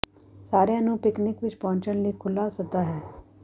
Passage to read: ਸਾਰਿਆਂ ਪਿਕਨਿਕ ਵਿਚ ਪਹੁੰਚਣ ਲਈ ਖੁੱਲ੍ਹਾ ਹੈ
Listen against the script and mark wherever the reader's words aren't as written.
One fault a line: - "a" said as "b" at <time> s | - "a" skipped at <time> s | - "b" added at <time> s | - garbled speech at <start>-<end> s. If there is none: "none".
- "ਨੂੰ" added at 0.8 s
- "ਸੱਦਾ" added at 2.5 s